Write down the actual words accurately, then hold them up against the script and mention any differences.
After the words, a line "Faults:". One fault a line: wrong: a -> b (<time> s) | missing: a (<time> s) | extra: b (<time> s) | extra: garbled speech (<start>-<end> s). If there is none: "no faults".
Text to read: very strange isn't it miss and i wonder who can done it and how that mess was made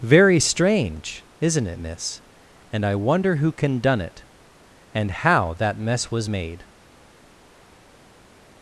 very strange isn't it miss and i wonder who can done it and how that mess was made
Faults:
no faults